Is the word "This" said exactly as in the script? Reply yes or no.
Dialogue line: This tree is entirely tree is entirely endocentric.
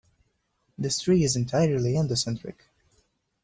yes